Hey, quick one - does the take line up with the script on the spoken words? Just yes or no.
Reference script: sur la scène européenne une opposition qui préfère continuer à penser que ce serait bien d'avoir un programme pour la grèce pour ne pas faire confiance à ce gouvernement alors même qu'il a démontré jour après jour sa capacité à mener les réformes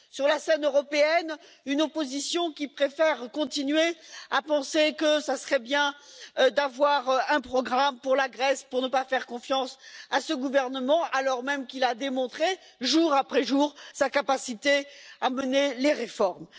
yes